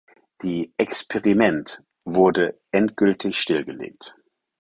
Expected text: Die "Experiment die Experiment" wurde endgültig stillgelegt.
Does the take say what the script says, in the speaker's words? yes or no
no